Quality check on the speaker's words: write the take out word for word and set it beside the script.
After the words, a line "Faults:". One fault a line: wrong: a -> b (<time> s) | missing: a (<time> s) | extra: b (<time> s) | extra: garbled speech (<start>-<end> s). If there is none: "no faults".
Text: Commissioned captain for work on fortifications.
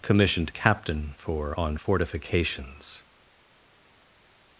Commissioned captain for on fortifications.
Faults:
missing: work (1.6 s)